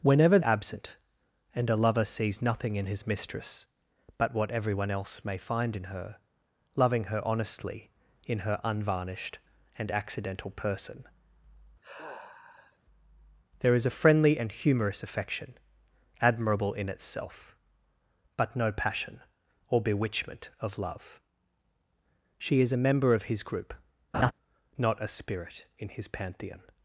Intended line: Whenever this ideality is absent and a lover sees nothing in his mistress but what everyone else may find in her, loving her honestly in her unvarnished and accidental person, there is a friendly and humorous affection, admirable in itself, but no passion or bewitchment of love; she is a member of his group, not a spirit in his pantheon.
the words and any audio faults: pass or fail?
fail